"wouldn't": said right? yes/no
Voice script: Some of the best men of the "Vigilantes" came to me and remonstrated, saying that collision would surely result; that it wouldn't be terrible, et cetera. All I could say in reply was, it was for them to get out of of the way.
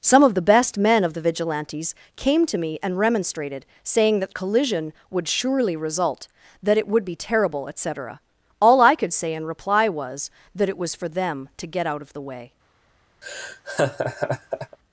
no